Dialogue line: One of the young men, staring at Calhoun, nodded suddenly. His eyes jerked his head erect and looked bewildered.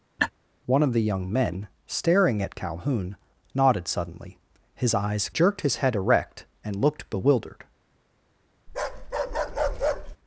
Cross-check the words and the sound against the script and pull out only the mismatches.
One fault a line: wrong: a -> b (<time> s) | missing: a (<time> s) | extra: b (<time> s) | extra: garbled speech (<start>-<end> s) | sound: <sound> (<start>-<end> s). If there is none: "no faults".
sound: laugh (0.2-0.3 s)
sound: bark (8.7-10.2 s)